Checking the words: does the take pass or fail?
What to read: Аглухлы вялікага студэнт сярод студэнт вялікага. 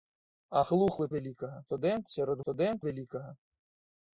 pass